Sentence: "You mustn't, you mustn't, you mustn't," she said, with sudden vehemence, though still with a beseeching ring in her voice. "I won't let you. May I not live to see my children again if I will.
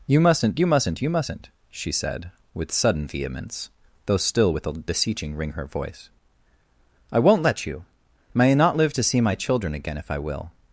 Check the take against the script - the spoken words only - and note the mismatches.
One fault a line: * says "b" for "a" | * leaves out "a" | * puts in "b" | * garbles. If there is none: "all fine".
* leaves out "in"